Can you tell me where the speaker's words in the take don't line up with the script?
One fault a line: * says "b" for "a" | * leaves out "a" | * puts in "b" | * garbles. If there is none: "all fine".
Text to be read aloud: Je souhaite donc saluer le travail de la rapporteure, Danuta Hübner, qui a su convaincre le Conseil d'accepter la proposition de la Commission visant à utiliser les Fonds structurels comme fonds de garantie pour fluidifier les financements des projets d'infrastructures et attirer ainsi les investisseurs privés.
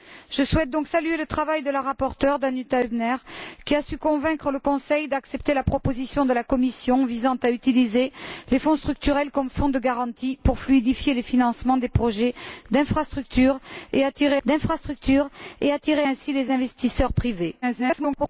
* puts in "d'infrastructures et attirer"
* garbles